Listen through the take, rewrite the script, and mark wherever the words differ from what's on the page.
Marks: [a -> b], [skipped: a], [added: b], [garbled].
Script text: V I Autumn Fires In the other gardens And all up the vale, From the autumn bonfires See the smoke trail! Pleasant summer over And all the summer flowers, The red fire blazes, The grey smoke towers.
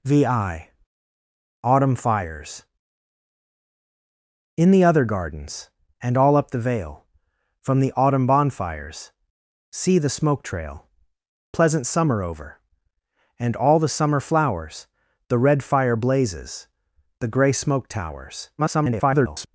V I Autumn Fires In the other gardens And all up the vale, From the autumn bonfires See the smoke trail! Pleasant summer over And all the summer flowers, The red fire blazes, The grey smoke towers. [garbled]